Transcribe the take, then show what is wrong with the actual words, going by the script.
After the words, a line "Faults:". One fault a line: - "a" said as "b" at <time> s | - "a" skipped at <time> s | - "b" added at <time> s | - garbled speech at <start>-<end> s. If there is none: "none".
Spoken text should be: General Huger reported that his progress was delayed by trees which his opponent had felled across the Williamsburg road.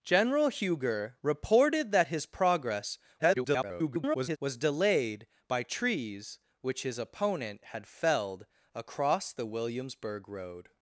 General Huger reported that his progress [garbled] was delayed by trees which his opponent had felled across the Williamsburg road.
Faults:
- garbled speech at 3.2-4.4 s